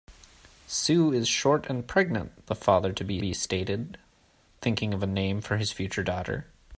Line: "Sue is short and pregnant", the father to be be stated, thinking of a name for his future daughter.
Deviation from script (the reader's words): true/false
false